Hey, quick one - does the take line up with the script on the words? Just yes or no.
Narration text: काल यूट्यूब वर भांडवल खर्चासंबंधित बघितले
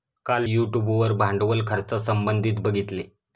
yes